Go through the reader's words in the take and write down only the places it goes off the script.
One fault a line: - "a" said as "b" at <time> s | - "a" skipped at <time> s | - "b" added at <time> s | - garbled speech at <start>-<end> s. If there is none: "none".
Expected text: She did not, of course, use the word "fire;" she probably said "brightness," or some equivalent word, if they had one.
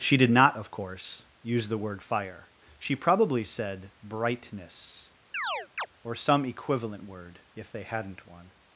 - "had" said as "hadn't" at 7.8 s